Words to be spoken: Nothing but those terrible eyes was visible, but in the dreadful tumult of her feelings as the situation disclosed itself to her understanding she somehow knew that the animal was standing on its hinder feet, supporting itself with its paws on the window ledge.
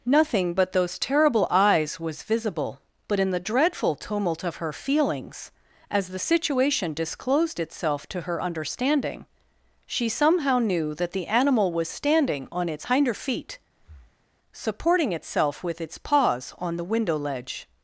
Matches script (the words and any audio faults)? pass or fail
fail